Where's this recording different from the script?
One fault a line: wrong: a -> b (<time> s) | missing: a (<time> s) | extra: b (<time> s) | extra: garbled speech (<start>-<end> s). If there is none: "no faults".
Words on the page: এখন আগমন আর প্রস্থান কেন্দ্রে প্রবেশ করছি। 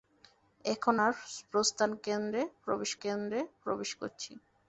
missing: আগমন (0.9 s)
extra: কেন্দ্রে প্রবেশ (3.0 s)